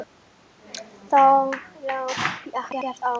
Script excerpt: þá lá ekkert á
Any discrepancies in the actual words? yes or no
no